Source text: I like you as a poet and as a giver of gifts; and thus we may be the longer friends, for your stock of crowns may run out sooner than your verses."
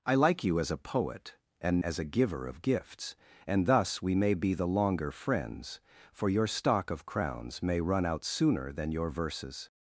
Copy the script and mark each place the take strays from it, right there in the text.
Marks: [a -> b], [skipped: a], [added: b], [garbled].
I like you as a poet and as a giver of gifts; and thus we may be the longer friends, for your stock of crowns may run out sooner than your verses."